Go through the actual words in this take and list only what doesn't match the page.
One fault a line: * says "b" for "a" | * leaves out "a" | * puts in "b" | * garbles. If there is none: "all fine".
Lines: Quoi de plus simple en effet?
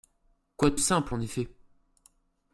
* leaves out "plus"